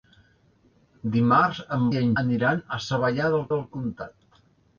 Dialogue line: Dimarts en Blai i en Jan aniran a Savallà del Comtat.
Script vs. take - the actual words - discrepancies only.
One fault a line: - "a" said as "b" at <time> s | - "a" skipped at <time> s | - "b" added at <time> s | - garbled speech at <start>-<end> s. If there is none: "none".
- "Blai" skipped at 1.8 s
- "Jan" skipped at 2.1 s
- "del" added at 3.5 s